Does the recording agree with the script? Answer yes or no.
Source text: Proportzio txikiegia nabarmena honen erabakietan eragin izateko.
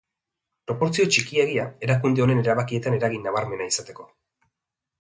no